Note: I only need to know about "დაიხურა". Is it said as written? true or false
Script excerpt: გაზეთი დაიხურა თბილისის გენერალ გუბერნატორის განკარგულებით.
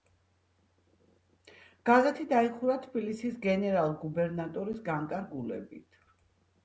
true